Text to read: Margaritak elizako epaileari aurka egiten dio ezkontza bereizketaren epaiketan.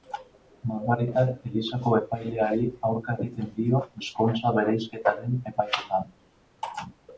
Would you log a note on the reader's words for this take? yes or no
no